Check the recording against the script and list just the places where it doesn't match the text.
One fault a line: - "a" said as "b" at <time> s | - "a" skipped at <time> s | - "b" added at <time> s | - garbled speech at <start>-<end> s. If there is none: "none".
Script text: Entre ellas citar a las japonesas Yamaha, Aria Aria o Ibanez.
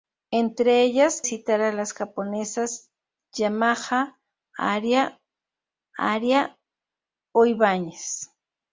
none